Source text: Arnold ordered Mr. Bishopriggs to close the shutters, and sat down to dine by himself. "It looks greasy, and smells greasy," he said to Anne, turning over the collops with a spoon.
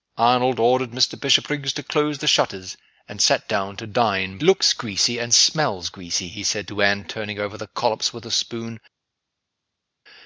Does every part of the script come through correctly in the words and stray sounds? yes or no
no